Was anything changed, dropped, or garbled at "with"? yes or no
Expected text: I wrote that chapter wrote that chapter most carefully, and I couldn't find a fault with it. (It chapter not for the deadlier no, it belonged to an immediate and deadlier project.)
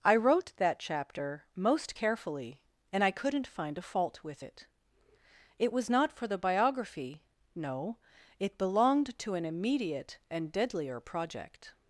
no